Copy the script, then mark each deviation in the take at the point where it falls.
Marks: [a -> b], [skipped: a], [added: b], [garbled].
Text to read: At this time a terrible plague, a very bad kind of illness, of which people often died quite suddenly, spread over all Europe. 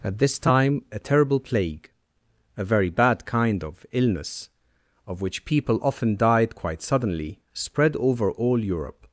At this time a terrible plague, a very bad kind of illness, of which people often died quite suddenly, spread over all Europe.